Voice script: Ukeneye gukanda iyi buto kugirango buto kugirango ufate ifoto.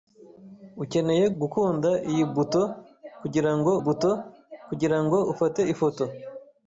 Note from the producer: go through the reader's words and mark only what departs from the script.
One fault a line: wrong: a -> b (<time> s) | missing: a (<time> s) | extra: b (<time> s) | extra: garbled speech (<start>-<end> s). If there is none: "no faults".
no faults